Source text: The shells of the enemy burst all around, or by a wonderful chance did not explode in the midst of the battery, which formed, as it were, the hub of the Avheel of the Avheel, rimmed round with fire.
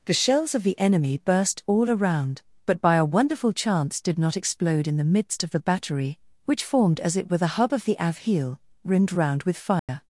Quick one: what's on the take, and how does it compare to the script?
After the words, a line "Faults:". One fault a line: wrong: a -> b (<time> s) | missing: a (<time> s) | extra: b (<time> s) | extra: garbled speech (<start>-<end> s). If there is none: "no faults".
The shells of the enemy burst all around, but by a wonderful chance did not explode in the midst of the battery, which formed, as it were, the hub of the Avheel, rimmed round with fire.
Faults:
wrong: or -> but (2.6 s)
missing: of the Avheel (8.6 s)